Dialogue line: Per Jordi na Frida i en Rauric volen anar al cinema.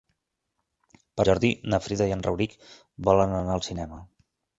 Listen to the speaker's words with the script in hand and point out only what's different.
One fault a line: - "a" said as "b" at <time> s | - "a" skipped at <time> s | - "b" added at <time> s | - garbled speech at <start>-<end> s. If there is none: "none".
none